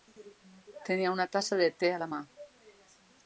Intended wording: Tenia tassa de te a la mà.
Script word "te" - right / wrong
right